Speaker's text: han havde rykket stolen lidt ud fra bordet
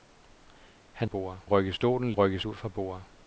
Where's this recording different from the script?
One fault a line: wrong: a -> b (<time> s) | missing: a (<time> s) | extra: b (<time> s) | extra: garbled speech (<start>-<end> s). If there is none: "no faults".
wrong: havde -> bordet (1.0 s)
wrong: lidt -> rykket (2.1 s)